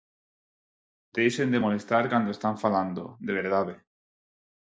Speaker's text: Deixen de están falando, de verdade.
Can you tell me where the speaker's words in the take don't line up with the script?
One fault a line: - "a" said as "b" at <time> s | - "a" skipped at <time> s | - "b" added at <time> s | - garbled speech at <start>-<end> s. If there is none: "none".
- "molestar cando" added at 1.6 s